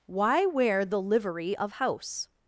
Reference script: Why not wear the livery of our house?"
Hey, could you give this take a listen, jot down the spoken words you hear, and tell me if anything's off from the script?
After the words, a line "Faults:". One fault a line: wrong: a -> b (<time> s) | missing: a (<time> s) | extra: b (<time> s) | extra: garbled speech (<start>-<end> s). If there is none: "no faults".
Why wear the livery of house?"
Faults:
missing: not (0.5 s)
missing: our (1.7 s)